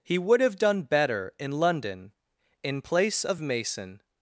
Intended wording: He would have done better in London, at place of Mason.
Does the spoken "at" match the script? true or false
false